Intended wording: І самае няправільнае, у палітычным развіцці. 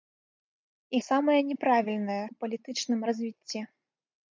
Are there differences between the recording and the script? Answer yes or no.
no